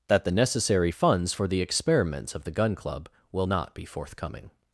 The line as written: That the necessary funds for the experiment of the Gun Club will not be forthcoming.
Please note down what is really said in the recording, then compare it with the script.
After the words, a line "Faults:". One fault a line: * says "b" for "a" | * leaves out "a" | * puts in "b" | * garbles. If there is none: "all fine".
That the necessary funds for the experiments of the Gun Club will not be forthcoming.
Faults:
* says "experiments" for "experiment"